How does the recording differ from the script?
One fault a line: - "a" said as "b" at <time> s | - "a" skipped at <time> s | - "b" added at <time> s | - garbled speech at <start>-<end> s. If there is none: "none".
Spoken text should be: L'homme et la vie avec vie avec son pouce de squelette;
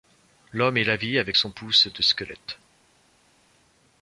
- "vie avec" skipped at 1.4 s